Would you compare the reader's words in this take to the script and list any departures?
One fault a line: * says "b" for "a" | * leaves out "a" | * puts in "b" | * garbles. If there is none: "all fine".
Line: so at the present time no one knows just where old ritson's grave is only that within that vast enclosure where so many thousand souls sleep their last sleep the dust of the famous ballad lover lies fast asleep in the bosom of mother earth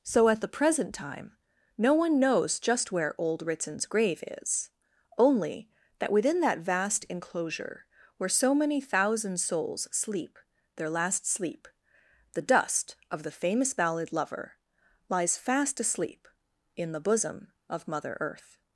all fine